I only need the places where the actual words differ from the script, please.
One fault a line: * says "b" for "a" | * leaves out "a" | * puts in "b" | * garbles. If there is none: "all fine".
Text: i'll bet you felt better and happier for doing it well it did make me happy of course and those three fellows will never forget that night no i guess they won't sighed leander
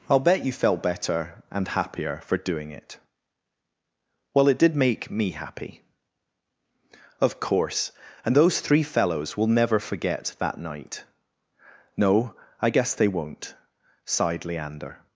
all fine